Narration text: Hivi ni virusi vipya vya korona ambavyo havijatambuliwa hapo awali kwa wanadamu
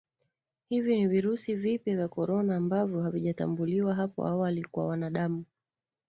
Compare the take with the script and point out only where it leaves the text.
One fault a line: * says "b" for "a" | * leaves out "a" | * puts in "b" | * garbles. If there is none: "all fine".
all fine